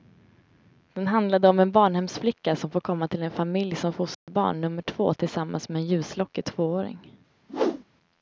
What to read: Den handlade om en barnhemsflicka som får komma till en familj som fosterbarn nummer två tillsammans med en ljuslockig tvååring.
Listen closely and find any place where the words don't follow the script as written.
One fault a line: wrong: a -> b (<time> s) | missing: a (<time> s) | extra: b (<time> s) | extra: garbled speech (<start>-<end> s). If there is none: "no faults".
no faults